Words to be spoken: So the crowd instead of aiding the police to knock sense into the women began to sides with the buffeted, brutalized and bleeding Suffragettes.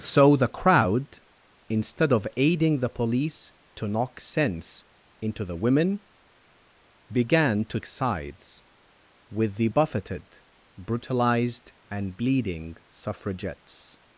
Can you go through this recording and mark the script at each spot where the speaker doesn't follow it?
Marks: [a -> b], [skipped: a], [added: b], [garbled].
So the crowd instead of aiding the police to knock sense into the women began to sides with the buffeted, brutalized and bleeding Suffragettes.